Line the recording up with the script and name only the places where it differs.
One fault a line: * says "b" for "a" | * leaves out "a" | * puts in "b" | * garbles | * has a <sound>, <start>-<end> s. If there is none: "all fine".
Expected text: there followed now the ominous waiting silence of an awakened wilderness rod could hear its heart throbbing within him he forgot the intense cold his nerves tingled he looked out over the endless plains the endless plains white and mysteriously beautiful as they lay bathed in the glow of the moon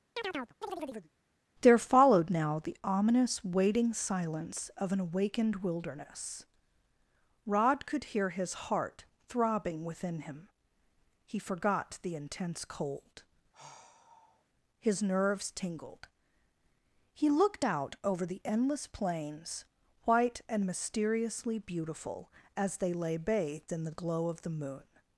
* has a chirp, 0.2-1.1 s
* says "his" for "its"
* has a sigh, 13.5-14.4 s
* leaves out "the endless plains"